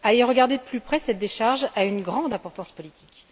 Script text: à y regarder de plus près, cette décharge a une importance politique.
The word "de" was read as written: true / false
true